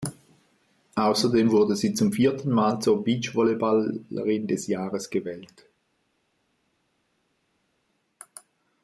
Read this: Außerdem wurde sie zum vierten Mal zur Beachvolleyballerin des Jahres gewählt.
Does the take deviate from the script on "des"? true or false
false